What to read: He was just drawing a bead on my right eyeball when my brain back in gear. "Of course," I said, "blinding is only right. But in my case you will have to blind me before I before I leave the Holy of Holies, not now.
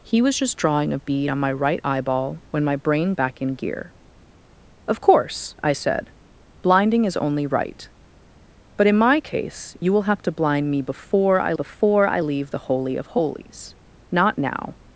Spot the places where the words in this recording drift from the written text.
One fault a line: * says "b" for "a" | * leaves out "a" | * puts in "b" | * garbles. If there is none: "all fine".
all fine